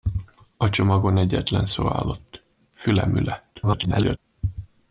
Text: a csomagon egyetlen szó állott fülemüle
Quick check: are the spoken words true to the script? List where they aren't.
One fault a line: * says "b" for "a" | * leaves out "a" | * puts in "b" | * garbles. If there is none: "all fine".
* garbles